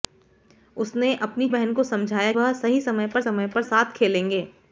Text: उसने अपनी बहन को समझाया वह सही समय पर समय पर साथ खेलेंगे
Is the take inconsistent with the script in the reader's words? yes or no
no